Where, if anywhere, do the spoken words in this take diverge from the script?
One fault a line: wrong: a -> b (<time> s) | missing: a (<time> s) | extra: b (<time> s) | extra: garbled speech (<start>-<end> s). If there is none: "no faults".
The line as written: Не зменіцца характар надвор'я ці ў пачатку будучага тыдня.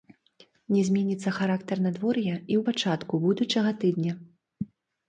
wrong: ці -> і (2.3 s)